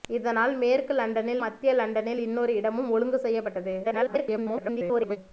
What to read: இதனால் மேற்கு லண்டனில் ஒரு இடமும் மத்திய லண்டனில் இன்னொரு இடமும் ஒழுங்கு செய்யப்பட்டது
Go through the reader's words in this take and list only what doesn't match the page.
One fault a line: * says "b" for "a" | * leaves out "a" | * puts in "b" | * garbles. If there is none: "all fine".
* leaves out "ஒரு இடமும்"
* garbles